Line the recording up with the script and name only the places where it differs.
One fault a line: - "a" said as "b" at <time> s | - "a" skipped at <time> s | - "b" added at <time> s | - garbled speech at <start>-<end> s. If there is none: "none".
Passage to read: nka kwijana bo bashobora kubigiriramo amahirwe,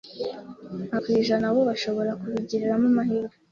none